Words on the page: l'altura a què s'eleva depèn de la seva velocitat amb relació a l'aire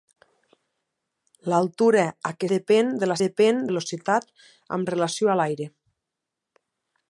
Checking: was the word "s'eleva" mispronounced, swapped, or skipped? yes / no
yes